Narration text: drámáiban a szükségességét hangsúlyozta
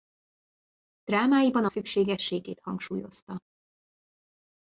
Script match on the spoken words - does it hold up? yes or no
yes